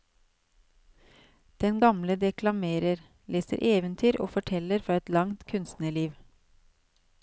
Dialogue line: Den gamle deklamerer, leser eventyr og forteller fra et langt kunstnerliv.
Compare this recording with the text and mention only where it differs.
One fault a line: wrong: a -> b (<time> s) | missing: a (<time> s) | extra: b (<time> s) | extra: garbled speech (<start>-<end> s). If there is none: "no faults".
no faults